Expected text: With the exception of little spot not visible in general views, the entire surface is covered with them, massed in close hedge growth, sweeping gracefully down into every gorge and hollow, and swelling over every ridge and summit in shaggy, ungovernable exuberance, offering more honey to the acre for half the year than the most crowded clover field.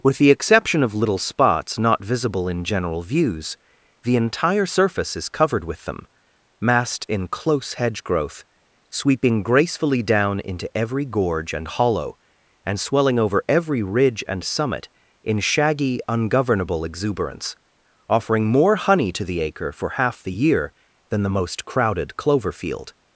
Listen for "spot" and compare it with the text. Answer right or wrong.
wrong